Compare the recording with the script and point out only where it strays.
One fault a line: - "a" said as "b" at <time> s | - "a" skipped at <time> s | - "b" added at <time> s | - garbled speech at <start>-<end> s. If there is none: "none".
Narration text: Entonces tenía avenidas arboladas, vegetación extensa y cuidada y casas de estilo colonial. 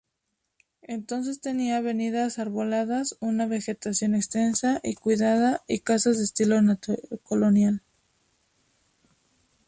- "una" added at 3.2 s